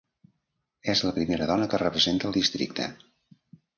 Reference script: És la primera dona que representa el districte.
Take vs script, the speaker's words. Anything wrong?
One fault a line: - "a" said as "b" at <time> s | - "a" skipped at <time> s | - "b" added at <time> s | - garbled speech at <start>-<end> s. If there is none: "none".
none